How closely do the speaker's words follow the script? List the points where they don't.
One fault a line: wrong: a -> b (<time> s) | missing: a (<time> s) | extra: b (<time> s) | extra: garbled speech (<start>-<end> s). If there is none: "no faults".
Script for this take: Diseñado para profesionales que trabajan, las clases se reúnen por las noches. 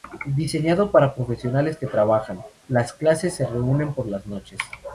no faults